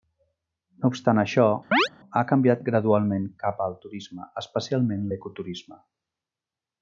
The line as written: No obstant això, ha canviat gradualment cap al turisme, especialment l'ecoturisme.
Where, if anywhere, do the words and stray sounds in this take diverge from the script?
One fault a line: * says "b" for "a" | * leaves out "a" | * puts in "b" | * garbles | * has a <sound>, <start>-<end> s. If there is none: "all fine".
* has a chirp, 1.7-1.9 s